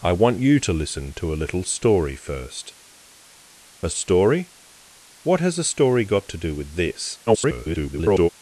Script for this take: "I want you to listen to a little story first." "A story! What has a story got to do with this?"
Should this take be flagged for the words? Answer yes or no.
yes